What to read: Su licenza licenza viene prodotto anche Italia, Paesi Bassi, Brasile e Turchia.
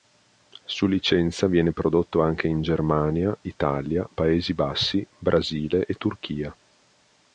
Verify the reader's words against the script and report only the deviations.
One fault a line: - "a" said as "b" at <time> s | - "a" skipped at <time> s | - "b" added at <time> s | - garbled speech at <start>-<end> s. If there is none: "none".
- "licenza" skipped at 1.4 s
- "in Germania" added at 2.5 s